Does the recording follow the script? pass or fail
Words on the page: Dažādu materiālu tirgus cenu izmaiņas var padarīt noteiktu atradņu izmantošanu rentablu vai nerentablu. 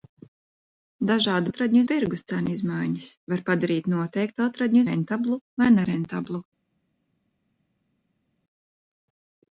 fail